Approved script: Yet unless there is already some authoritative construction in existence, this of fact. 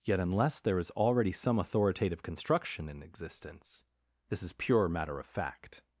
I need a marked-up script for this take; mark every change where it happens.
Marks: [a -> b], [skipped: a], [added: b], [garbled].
Yet unless there is already some authoritative construction in existence, this [added: is pure matter] of fact.